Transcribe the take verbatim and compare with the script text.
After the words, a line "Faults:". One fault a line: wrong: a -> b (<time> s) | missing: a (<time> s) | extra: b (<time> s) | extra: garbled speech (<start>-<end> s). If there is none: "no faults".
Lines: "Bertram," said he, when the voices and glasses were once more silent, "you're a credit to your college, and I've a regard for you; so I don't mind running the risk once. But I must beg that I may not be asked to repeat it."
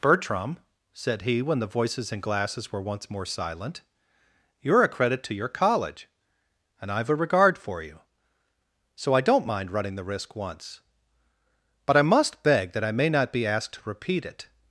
"Bertram," said he, when the voices and glasses were once more silent, "you're a credit to your college, and I've a regard for you; so I don't mind running the risk once. But I must beg that I may not be asked to repeat it."
Faults:
no faults